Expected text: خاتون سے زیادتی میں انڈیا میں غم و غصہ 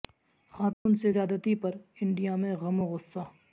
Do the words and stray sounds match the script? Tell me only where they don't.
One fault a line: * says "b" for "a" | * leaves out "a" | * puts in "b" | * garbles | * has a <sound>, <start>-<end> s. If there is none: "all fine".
* has a dropout, 0.7-0.9 s
* says "پر" for "میں"